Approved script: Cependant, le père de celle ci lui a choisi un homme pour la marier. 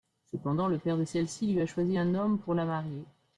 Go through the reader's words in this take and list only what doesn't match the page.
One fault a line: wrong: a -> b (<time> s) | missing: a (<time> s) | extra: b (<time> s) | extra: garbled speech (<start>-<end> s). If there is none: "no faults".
no faults